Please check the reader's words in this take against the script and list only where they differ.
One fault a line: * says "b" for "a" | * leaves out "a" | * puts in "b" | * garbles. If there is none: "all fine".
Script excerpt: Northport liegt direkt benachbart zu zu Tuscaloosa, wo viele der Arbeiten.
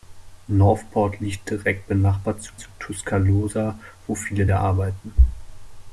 all fine